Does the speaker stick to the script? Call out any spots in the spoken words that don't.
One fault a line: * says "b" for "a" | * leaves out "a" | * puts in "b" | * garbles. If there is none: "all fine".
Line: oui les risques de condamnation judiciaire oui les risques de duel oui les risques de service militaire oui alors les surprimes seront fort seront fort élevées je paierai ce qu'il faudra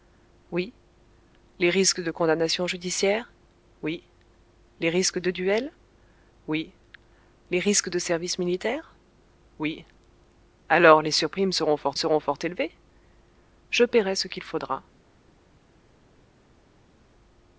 all fine